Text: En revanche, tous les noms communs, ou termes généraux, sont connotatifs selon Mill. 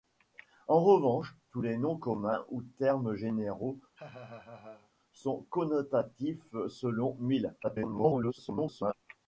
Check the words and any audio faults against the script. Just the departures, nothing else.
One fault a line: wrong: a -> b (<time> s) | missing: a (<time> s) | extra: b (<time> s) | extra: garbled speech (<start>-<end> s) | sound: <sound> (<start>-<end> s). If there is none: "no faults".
sound: laugh (3.9-4.9 s)
extra: garbled speech (7.6-8.9 s)